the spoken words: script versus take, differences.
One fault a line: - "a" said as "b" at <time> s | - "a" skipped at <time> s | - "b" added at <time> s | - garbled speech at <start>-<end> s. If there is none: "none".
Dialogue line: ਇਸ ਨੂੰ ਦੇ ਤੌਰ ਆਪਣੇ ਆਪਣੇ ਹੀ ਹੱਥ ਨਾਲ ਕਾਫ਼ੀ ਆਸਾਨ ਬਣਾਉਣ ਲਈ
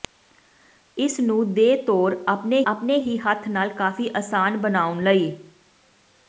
none